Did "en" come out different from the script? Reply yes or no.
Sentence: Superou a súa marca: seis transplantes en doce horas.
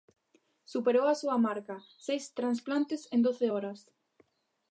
no